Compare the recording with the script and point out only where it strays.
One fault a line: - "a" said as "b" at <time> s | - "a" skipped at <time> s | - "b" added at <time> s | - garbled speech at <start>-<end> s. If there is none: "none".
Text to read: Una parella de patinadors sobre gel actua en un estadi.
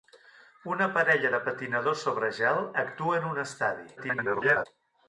- garbled speech at 4.0-4.7 s